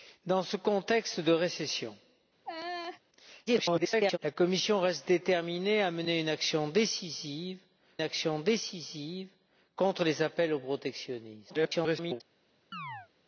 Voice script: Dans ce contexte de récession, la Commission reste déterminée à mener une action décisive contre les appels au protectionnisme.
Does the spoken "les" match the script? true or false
true